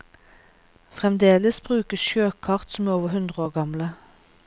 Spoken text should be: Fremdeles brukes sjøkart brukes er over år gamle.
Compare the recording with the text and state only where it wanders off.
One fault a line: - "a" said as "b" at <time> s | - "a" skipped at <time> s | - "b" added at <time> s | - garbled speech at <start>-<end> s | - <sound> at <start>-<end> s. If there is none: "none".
- "brukes" said as "som" at 2.7 s
- "hundre" added at 3.1 s